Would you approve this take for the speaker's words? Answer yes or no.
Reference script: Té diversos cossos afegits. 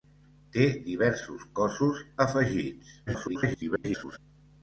no